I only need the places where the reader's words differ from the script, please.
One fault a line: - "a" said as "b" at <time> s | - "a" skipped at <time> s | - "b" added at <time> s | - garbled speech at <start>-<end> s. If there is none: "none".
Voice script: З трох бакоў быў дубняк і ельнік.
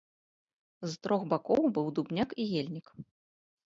none